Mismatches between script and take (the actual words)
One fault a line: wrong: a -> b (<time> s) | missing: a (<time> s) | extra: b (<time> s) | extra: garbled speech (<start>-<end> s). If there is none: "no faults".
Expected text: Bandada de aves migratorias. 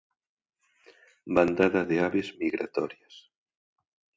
no faults